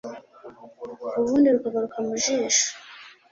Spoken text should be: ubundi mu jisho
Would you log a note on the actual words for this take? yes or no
yes